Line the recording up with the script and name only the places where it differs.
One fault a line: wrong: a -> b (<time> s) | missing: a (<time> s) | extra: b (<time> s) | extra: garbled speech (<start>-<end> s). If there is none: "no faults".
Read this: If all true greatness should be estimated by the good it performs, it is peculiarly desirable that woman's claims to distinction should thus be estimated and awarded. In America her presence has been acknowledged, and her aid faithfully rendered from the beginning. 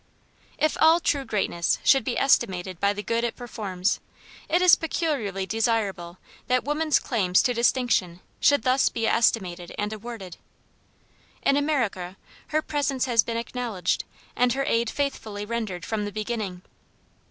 no faults